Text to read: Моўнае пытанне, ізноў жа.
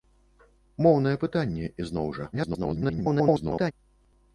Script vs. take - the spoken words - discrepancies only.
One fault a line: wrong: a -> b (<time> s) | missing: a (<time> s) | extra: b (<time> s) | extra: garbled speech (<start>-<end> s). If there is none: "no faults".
extra: garbled speech (2.3-3.7 s)